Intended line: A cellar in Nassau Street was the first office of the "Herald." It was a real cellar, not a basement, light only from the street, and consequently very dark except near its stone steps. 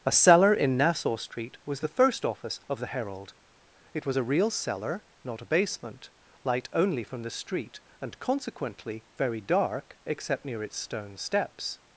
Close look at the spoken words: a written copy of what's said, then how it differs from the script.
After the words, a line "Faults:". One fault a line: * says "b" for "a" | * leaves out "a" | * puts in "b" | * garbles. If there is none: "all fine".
A cellar in Nassau Street was the first office of the "Herald." It was a real cellar, not a basement, light only from the street, and consequently very dark except near its stone steps.
Faults:
all fine